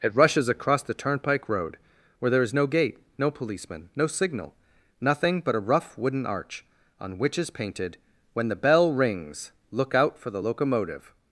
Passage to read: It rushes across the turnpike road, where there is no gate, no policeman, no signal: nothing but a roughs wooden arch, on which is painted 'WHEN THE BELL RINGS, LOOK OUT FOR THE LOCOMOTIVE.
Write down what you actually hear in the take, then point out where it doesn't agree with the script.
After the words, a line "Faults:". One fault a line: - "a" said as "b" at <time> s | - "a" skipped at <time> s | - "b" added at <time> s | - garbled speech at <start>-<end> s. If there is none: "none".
It rushes across the turnpike road, where there is no gate, no policeman, no signal: nothing but a rough wooden arch, on which is painted 'WHEN THE BELL RINGS, LOOK OUT FOR THE LOCOMOTIVE.
Faults:
- "roughs" said as "rough" at 5.7 s